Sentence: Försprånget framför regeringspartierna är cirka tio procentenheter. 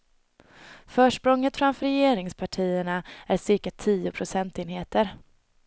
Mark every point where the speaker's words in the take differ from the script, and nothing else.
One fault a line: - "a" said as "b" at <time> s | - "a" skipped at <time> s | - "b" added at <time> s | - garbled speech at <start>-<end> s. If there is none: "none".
none